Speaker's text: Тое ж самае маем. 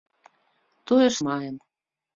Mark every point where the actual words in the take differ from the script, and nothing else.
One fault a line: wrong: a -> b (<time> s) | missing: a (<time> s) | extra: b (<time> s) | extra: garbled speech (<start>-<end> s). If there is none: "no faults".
missing: самае (1.1 s)